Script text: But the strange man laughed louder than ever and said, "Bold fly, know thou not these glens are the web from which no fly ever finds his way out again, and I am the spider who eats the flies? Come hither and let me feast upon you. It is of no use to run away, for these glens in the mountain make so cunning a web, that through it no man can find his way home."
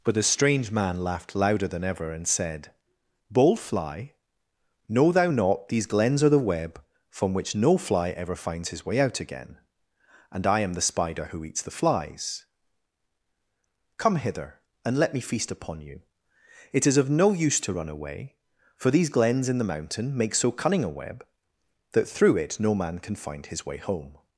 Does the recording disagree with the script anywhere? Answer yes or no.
no